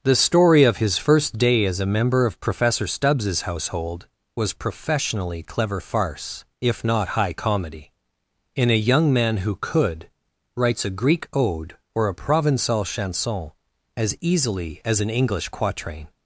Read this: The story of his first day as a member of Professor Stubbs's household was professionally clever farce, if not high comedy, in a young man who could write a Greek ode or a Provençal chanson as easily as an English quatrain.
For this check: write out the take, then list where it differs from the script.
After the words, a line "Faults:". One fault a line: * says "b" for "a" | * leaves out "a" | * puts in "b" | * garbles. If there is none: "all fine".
The story of his first day as a member of Professor Stubbs's household was professionally clever farce, if not high comedy, in a young man who could writes a Greek ode or a Provençal chanson as easily as an English quatrain.
Faults:
* says "writes" for "write"